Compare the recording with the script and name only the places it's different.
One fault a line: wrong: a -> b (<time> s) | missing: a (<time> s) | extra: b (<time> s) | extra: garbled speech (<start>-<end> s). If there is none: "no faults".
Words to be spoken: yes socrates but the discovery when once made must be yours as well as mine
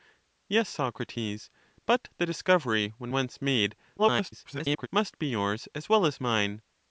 extra: garbled speech (4.0-4.9 s)